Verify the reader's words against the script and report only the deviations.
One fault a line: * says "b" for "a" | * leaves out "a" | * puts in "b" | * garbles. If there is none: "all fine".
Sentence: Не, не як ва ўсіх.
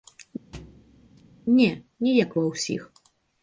all fine